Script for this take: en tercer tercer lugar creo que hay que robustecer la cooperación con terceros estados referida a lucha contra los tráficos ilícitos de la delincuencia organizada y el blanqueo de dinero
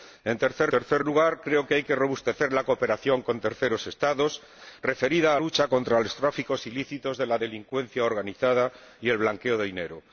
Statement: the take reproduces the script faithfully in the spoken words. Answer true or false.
true